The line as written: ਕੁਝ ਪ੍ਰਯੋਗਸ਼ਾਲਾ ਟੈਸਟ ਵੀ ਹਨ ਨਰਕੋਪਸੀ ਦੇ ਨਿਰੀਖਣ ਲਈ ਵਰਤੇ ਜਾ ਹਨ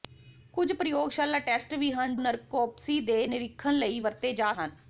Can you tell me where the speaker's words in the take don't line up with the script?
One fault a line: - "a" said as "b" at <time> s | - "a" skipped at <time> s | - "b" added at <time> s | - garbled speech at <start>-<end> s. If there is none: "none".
none